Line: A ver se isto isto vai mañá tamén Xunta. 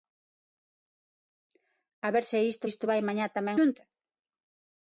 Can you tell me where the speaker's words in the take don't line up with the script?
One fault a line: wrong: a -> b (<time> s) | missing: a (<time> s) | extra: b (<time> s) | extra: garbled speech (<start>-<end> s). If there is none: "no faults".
no faults